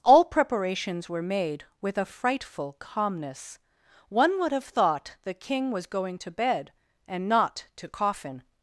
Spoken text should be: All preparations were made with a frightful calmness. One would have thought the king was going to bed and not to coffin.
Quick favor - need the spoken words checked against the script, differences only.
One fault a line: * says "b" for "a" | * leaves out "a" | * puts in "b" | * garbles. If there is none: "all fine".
all fine